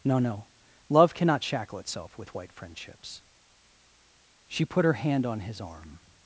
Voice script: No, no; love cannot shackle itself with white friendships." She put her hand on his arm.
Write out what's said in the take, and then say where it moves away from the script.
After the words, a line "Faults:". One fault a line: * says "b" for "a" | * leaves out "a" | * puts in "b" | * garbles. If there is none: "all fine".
No, no; love cannot shackle itself with white friendships." She put her hand on his arm.
Faults:
all fine